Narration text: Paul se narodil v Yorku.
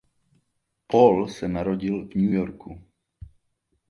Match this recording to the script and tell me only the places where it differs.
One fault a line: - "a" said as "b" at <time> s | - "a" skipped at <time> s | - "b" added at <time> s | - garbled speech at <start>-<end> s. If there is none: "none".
- "New" added at 2.1 s